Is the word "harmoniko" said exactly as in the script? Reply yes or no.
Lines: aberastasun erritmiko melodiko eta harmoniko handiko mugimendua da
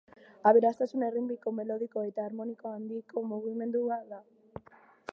yes